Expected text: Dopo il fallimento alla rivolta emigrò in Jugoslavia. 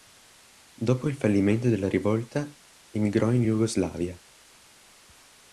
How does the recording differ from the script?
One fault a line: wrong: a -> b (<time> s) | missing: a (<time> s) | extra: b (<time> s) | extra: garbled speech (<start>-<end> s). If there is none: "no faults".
wrong: alla -> della (1.7 s)